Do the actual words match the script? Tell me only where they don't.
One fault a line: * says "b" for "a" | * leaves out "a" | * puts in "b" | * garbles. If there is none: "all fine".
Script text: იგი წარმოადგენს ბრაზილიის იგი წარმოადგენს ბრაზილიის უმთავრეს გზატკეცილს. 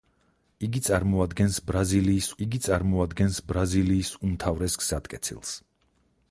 all fine